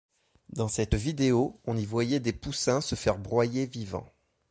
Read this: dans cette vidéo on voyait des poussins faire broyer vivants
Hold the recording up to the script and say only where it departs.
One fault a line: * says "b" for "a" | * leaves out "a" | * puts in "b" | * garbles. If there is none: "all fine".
* puts in "y"
* puts in "se"